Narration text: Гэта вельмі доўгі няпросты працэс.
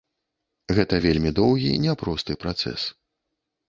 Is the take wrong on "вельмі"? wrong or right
right